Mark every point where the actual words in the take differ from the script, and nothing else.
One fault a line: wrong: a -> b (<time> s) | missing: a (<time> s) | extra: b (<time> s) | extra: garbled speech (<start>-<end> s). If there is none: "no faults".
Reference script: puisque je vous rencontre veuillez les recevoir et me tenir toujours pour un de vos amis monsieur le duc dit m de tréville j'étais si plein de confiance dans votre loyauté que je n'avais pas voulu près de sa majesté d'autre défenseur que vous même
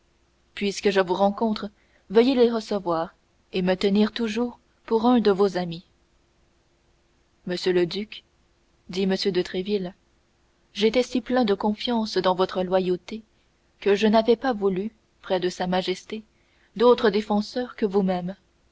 no faults